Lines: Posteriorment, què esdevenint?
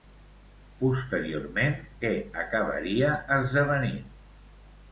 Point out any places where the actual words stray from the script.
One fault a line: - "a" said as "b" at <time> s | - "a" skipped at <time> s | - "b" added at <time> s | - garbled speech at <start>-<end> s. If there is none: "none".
- "acabaria" added at 2.4 s